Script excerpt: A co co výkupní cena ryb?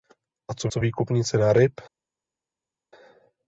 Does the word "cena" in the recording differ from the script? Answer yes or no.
no